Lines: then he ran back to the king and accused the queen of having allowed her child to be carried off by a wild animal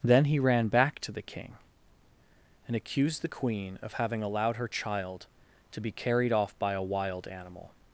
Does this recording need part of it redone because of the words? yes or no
no